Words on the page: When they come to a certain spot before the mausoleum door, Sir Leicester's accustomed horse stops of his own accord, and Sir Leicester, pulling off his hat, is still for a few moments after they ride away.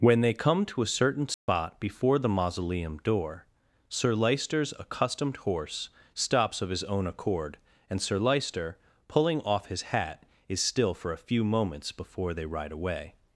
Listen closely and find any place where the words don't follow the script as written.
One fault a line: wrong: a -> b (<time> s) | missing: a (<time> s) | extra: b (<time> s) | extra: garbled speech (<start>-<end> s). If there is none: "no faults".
wrong: after -> before (11.9 s)